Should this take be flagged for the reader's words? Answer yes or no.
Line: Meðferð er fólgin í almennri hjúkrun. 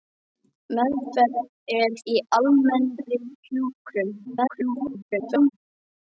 yes